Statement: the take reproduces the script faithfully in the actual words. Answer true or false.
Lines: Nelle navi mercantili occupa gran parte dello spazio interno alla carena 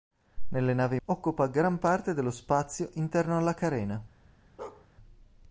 false